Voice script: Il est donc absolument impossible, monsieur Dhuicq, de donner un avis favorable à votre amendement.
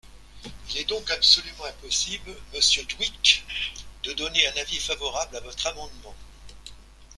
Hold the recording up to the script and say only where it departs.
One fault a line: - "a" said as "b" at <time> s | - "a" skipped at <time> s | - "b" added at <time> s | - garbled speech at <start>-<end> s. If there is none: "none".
none